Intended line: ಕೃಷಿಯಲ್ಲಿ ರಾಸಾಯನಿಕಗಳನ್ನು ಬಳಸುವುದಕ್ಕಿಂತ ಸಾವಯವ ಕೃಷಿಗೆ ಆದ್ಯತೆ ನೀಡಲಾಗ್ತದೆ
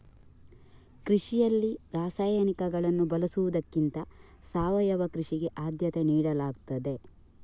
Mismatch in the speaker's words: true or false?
false